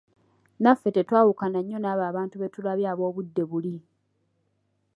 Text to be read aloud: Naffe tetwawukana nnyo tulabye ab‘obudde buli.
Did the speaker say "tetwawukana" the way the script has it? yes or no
yes